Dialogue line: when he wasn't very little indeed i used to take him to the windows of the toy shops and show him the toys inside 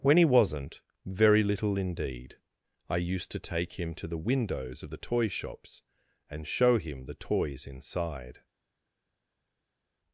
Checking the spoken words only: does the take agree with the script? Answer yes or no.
yes